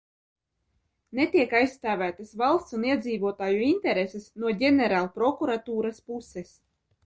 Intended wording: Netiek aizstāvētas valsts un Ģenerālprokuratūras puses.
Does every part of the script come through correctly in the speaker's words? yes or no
no